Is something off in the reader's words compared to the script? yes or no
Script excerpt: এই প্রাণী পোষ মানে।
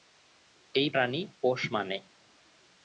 no